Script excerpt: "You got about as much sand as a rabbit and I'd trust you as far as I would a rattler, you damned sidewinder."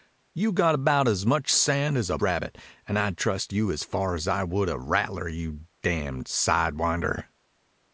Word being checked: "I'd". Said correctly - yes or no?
yes